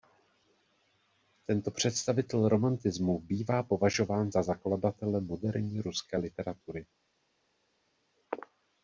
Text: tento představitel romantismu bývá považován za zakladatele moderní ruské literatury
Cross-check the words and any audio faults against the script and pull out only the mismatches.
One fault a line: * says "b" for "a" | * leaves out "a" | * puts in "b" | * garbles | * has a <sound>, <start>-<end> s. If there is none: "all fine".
all fine